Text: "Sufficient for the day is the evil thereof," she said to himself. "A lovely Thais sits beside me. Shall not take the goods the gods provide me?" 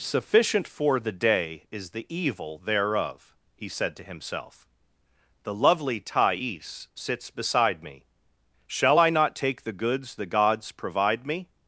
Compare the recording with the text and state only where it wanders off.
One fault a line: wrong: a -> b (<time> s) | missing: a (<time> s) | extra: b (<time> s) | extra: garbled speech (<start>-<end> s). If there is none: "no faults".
wrong: she -> he (3.5 s)
wrong: A -> The (5.4 s)
extra: I (9.0 s)